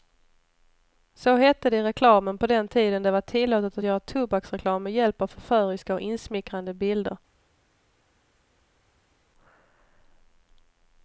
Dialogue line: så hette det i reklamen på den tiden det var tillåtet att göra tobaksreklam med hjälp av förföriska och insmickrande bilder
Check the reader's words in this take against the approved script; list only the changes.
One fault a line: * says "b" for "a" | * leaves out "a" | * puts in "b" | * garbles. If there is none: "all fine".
all fine